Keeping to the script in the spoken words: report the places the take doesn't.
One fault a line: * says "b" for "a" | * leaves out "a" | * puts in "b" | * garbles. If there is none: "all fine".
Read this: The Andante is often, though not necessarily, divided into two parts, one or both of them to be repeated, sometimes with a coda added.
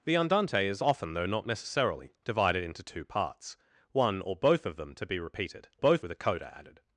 * says "both" for "sometimes"